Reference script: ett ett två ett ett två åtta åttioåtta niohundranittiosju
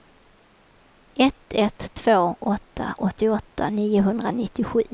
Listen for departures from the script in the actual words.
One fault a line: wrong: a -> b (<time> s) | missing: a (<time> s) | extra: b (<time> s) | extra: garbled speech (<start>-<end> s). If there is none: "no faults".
missing: ett ett två (2.4 s)